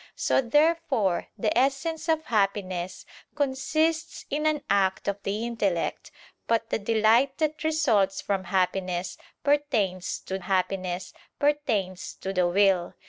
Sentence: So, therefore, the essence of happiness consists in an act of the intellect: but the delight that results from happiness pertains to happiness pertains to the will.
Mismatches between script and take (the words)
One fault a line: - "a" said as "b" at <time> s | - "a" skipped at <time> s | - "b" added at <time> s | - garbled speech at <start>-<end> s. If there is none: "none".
none